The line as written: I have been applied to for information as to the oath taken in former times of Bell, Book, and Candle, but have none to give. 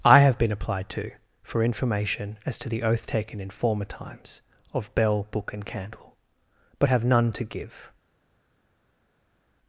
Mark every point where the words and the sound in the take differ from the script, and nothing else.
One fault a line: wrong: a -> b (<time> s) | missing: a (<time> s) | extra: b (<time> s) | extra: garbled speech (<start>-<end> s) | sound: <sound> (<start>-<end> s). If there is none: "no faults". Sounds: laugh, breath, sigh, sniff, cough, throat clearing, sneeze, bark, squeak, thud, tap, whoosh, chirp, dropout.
no faults